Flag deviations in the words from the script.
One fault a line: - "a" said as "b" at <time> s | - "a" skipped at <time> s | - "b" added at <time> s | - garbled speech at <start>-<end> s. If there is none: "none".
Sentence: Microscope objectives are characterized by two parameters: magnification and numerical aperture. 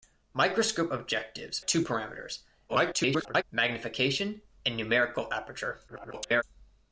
- "are characterized by" skipped at 1.6 s
- garbled speech at 2.7-3.4 s
- garbled speech at 5.9-6.4 s